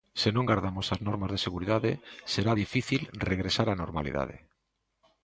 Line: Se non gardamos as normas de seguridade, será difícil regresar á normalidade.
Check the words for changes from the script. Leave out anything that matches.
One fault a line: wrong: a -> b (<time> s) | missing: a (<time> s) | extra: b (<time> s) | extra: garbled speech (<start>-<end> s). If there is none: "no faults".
no faults